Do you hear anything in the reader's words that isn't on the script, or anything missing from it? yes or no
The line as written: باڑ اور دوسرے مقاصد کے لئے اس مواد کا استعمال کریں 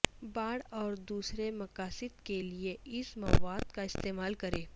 no